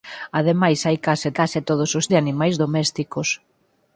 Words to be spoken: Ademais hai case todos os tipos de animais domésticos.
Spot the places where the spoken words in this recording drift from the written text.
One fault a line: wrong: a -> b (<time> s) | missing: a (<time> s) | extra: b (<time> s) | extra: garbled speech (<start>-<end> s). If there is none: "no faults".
extra: case (1.4 s)
missing: tipos (2.1 s)